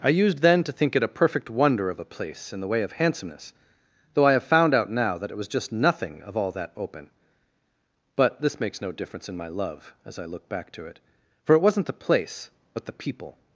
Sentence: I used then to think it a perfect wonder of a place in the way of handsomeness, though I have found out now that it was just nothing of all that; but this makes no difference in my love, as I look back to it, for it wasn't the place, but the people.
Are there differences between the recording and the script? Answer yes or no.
yes